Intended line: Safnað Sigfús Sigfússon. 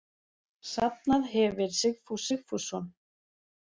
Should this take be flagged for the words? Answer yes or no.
yes